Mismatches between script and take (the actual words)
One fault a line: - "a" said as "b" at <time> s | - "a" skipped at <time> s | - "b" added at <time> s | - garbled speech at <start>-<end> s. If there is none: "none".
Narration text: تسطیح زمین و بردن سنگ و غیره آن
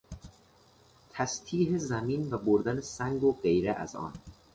- "از" added at 3.7 s